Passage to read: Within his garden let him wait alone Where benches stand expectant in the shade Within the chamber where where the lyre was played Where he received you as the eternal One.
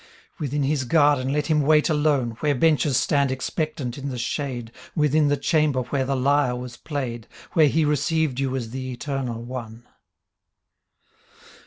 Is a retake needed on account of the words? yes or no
yes